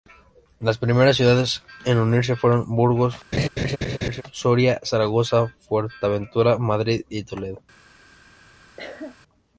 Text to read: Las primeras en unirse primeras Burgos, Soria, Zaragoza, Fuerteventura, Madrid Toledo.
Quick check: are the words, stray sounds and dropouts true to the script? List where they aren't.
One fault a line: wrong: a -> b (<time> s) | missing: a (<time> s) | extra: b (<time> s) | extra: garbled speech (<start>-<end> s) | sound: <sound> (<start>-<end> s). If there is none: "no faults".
extra: ciudades (1.2 s)
wrong: primeras -> fueron (2.4 s)
sound: laugh (3.3-4.2 s)
extra: y (7.1 s)
sound: cough (8.8-9.2 s)